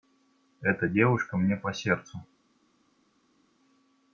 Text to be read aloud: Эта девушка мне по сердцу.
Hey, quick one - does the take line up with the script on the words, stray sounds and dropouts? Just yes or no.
yes